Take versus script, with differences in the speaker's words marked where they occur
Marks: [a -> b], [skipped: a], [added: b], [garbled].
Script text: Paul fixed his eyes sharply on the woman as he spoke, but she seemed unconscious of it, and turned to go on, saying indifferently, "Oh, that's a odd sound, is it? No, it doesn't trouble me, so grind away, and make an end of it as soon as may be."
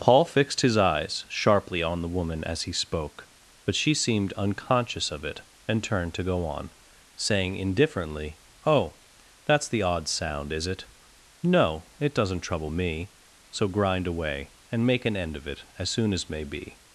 Paul fixed his eyes sharply on the woman as he spoke, but she seemed unconscious of it, and turned to go on, saying indifferently, "Oh, that's [a -> the] odd sound, is it? No, it doesn't trouble me, so grind away, and make an end of it as soon as may be."